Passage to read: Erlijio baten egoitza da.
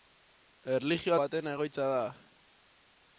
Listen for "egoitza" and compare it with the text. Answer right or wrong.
right